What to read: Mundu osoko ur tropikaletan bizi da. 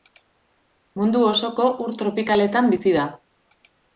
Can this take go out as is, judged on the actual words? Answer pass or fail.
pass